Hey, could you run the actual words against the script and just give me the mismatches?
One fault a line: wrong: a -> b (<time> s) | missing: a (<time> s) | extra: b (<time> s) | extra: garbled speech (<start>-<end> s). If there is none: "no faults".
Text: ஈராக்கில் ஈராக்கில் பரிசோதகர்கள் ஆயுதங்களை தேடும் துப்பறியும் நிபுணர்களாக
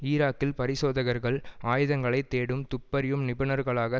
missing: ஈராக்கில் (0.6 s)